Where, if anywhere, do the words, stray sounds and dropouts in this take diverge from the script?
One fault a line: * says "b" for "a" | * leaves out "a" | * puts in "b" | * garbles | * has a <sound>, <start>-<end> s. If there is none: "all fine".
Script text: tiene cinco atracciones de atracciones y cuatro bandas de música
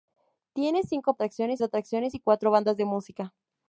all fine